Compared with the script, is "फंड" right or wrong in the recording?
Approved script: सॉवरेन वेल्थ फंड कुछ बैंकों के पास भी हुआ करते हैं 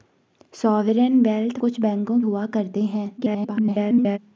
wrong